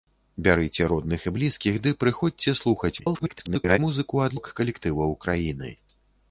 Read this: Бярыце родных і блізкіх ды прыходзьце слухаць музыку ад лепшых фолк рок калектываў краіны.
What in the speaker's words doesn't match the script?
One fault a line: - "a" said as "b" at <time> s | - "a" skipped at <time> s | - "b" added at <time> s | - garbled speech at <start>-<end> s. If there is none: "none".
- garbled speech at 3.0-3.8 s
- "лепшых фолк" skipped at 4.4 s